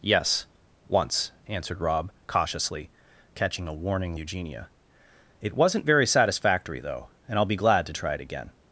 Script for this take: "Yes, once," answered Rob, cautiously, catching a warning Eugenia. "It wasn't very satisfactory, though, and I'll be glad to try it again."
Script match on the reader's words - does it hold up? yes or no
yes